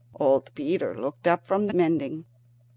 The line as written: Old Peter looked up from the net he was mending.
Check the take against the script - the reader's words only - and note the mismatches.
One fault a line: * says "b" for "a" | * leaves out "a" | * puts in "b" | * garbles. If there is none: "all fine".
* leaves out "net he was"